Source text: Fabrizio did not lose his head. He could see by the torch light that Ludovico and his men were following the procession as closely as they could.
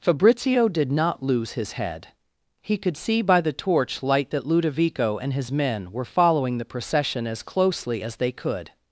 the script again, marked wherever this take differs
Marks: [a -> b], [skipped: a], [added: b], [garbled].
Fabrizio did not lose his head. He could see by the torch light that Ludovico and his men were following the procession as closely as they could.